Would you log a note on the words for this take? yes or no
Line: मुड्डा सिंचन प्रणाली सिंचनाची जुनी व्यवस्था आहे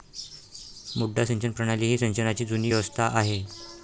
yes